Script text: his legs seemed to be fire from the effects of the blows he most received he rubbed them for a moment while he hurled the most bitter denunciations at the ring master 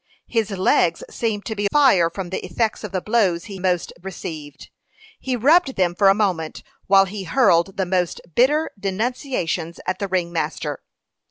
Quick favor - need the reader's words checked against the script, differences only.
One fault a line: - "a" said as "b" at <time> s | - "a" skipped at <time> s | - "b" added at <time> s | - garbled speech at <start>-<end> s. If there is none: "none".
none